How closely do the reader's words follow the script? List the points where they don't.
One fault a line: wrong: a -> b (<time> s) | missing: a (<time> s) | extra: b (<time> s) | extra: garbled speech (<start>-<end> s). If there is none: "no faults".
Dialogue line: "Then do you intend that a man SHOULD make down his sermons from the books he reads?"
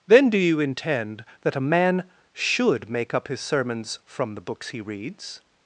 wrong: down -> up (3.1 s)